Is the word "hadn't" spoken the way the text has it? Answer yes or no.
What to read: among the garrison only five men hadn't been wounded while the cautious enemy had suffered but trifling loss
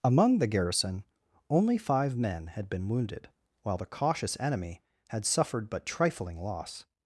no